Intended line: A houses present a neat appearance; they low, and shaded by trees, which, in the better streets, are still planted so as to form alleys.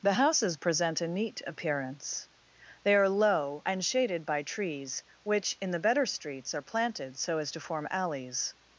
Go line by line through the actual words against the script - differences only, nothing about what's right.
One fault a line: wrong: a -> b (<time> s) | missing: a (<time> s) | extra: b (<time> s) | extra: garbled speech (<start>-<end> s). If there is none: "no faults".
wrong: A -> The (0.0 s)
extra: are (3.0 s)
missing: still (6.6 s)